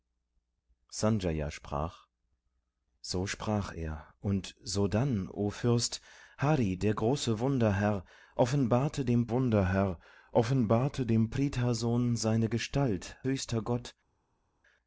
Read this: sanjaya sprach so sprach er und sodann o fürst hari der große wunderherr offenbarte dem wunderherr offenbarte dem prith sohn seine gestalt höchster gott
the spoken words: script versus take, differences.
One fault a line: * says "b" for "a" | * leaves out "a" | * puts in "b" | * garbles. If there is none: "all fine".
all fine